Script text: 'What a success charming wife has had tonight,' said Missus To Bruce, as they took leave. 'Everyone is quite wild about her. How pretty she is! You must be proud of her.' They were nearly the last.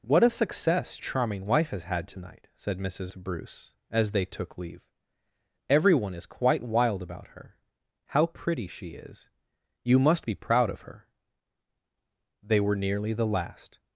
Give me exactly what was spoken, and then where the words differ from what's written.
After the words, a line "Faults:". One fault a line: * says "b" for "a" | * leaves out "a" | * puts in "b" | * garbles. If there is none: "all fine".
'What a success charming wife has had tonight,' said Missus To Bruce, as they took leave. 'Everyone is quite wild about her. How pretty she is! You must be proud of her.' They were nearly the last.
Faults:
all fine